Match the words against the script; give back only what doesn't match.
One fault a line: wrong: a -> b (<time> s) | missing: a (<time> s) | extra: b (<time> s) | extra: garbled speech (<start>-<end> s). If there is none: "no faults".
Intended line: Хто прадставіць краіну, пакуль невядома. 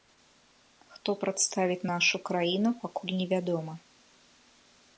extra: нашу (1.9 s)